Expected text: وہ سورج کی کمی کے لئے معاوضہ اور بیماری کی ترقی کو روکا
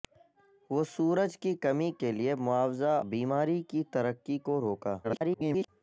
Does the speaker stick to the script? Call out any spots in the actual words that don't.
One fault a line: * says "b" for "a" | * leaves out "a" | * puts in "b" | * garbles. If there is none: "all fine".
* leaves out "اور"
* garbles